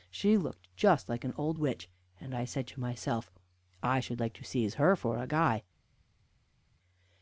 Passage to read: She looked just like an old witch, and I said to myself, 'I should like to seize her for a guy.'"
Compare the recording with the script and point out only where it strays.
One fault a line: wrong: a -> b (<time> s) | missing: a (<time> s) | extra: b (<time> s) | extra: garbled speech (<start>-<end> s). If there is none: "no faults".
no faults